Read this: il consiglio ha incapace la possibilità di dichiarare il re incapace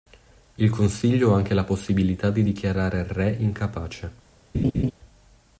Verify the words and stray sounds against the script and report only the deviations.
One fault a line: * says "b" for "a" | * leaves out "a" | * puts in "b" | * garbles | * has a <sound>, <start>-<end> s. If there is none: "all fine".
* says "anche" for "incapace"
* has a laugh, 4.5-4.9 s